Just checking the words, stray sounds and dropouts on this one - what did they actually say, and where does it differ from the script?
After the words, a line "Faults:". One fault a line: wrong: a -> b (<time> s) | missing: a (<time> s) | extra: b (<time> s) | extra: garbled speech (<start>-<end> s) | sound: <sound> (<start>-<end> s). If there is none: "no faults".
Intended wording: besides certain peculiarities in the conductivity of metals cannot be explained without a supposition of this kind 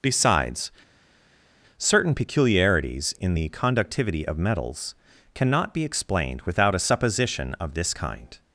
besides certain peculiarities in the conductivity of metals cannot be explained without a supposition of this kind
Faults:
no faults